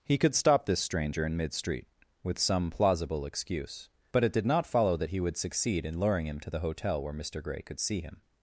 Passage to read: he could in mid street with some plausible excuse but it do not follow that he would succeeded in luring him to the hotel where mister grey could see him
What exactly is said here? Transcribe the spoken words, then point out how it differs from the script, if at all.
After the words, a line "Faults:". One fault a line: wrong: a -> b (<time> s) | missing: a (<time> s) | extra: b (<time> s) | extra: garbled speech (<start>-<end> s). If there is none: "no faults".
he could stop this stranger in mid street with some plausible excuse but it did not follow that he would succeed in luring him to the hotel where mister grey could see him
Faults:
extra: stop this stranger (0.3 s)
wrong: do -> did (4.3 s)
wrong: succeeded -> succeed (5.4 s)